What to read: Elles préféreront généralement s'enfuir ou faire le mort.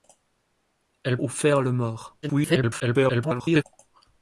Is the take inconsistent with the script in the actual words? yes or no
yes